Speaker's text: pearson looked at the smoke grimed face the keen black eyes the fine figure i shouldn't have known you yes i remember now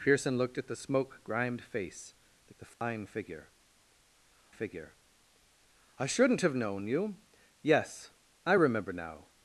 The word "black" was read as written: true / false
false